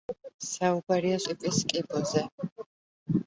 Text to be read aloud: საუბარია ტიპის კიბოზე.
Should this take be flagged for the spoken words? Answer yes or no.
no